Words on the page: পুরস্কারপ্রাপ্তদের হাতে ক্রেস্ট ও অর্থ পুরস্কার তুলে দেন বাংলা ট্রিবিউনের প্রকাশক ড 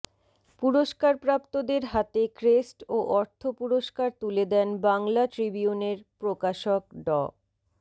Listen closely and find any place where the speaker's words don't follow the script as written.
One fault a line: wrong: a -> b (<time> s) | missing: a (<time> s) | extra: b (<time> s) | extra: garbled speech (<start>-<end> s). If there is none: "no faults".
no faults